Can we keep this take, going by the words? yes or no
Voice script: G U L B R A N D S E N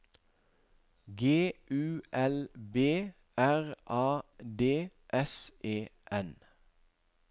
no